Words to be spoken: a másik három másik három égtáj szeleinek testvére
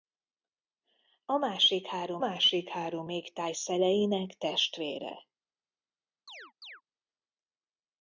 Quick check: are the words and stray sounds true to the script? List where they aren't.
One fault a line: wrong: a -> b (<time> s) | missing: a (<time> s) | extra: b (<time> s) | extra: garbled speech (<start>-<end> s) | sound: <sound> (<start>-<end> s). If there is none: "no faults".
sound: chirp (6.3-6.8 s)